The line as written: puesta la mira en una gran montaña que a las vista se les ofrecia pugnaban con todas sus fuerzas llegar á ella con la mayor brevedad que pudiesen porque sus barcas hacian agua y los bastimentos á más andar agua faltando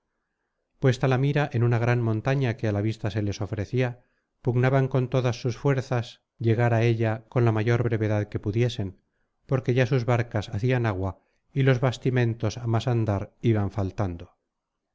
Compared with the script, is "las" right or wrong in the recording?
wrong